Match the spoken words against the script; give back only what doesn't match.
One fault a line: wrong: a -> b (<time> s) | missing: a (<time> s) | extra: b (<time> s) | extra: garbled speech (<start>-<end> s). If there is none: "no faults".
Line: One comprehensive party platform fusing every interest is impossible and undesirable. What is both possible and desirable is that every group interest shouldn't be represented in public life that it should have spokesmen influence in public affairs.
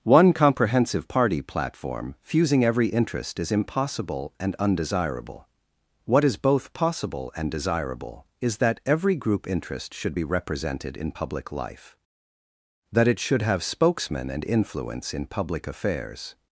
wrong: shouldn't -> should (9.9 s)
extra: and (14.3 s)